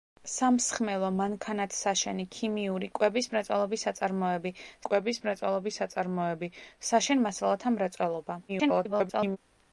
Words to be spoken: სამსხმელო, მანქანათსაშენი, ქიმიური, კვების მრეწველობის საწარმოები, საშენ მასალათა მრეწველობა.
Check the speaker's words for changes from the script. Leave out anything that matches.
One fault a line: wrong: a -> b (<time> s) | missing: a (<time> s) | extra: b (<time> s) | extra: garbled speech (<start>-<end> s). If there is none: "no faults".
extra: კვების მრეწველობის საწარმოები (4.9 s)
extra: garbled speech (8.5-9.4 s)